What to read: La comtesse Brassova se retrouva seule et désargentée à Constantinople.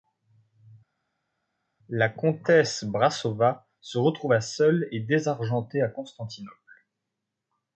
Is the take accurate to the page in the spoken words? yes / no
yes